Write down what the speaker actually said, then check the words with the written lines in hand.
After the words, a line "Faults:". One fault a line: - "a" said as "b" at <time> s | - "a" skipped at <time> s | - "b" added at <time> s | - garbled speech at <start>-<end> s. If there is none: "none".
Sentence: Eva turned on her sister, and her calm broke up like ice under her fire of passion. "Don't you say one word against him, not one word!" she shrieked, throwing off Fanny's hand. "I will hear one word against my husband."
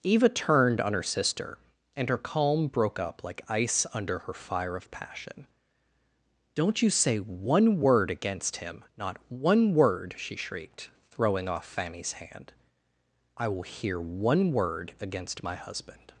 Eva turned on her sister, and her calm broke up like ice under her fire of passion. "Don't you say one word against him, not one word!" she shrieked, throwing off Fanny's hand. "I will hear one word against my husband."
Faults:
none